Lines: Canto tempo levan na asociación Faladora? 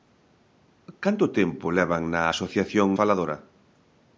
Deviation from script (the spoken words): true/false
false